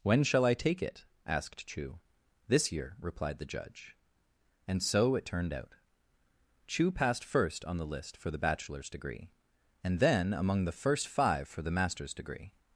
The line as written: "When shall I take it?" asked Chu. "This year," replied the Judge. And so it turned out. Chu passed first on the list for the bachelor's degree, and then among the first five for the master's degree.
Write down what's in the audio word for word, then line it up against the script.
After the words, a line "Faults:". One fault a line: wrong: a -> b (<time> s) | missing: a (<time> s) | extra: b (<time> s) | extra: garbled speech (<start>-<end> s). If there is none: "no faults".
"When shall I take it?" asked Chu. "This year," replied the Judge. And so it turned out. Chu passed first on the list for the bachelor's degree, and then among the first five for the master's degree.
Faults:
no faults